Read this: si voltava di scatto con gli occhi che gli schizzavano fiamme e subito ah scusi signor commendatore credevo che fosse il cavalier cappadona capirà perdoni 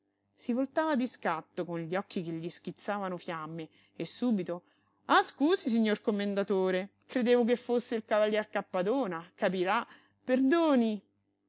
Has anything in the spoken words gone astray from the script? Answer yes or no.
no